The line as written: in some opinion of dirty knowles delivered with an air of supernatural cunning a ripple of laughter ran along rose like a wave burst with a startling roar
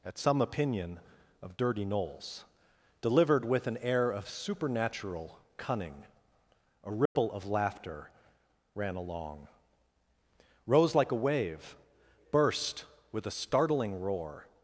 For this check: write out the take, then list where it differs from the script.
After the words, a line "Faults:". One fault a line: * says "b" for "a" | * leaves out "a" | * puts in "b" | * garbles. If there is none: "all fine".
at some opinion of dirty knowles delivered with an air of supernatural cunning a ripple of laughter ran along rose like a wave burst with a startling roar
Faults:
* says "at" for "in"